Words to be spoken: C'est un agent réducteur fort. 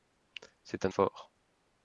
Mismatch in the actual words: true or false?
true